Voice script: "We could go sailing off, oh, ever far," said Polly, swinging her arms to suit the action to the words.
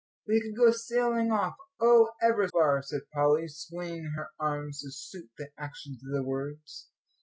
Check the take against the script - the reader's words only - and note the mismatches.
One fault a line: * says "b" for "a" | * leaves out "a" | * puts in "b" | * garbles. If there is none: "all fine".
all fine